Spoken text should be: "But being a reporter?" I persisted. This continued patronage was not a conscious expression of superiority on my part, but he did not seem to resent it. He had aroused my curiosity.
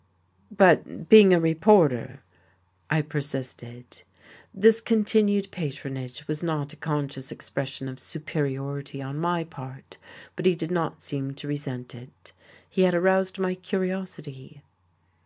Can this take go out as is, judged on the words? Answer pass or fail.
pass